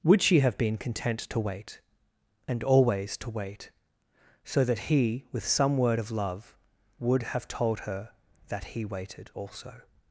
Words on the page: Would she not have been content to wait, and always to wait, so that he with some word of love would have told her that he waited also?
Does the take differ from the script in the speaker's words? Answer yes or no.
yes